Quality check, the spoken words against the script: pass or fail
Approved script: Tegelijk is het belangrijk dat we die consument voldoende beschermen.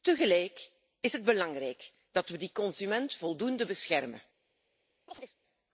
pass